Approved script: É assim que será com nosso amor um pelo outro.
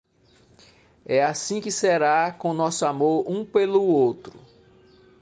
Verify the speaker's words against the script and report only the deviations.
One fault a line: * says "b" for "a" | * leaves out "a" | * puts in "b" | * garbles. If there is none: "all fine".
all fine